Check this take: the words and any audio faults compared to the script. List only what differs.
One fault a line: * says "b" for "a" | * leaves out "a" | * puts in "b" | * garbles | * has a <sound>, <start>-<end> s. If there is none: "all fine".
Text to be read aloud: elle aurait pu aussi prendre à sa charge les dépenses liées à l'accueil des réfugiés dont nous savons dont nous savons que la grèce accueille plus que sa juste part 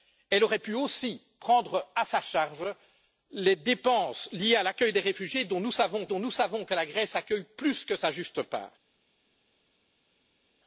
all fine